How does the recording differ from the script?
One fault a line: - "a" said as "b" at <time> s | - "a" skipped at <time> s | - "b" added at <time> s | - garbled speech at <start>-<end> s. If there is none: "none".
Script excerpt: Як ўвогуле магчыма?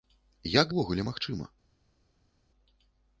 none